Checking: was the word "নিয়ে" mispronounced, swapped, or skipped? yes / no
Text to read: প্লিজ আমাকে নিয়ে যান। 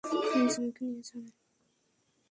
no